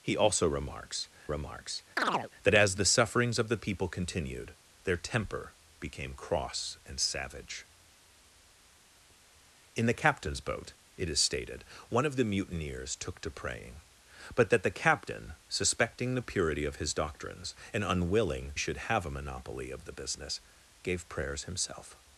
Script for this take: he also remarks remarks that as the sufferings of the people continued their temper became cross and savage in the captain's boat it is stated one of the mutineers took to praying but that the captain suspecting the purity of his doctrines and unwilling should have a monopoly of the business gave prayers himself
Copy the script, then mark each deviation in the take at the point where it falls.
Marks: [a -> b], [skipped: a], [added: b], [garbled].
he also remarks remarks that as the sufferings of the people continued their temper became cross and savage in the captain's boat it is stated one of the mutineers took to praying but that the captain suspecting the purity of his doctrines and unwilling should have a monopoly of the business gave prayers himself